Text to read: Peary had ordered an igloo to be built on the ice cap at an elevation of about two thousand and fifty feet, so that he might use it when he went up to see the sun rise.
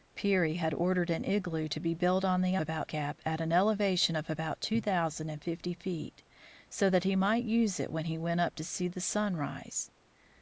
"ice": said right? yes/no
no